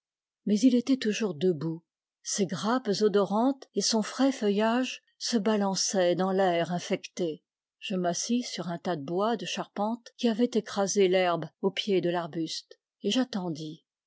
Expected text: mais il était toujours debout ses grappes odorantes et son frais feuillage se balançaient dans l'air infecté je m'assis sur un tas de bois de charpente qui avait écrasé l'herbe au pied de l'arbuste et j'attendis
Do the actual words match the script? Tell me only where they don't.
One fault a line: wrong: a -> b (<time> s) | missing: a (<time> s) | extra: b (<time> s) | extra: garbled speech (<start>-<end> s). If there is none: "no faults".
no faults